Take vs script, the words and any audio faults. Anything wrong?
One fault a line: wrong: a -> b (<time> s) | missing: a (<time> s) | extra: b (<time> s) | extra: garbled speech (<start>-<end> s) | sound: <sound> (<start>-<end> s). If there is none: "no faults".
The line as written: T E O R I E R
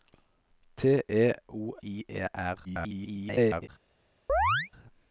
missing: R (1.8 s)
extra: garbled speech (2.6-3.7 s)
sound: chirp (4.3-4.7 s)